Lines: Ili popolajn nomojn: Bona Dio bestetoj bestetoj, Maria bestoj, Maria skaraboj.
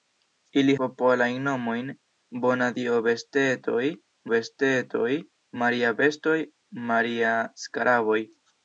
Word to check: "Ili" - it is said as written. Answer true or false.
true